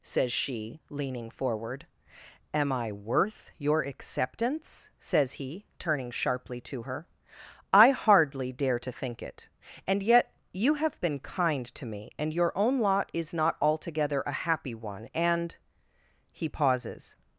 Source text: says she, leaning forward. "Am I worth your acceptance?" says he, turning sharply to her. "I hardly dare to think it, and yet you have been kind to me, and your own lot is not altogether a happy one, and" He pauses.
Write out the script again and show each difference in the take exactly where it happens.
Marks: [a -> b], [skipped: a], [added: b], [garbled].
says she, leaning forward. "Am I worth your acceptance?" says he, turning sharply to her. "I hardly dare to think it, and yet you have been kind to me, and your own lot is not altogether a happy one, and" He pauses.